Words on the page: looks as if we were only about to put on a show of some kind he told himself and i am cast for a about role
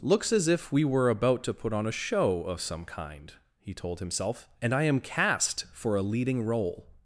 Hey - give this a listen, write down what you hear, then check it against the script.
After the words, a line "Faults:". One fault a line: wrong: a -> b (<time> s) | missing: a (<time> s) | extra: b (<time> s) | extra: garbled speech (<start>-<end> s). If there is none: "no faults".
looks as if we were about to put on a show of some kind he told himself and i am cast for a leading role
Faults:
missing: only (1.1 s)
wrong: about -> leading (6.0 s)